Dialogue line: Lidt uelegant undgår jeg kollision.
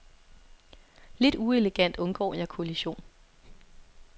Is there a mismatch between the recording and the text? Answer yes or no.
no